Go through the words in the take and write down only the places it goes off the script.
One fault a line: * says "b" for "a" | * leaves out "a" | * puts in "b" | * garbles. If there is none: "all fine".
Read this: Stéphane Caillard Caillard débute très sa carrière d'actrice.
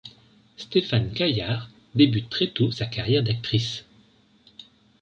* leaves out "Caillard"
* puts in "tôt"